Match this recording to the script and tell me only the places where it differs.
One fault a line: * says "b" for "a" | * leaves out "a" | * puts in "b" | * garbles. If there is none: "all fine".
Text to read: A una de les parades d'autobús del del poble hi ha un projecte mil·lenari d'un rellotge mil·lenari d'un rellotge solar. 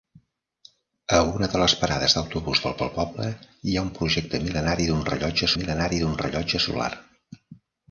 all fine